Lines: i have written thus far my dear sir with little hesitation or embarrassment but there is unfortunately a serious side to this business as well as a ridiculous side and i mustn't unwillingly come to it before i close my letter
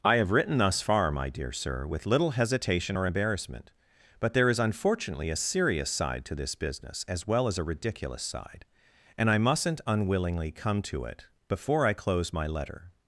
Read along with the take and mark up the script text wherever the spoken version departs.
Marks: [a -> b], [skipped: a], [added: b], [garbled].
i have written thus far my dear sir with little hesitation or embarrassment but there is unfortunately a serious side to this business as well as a ridiculous side and i mustn't unwillingly come to it before i close my letter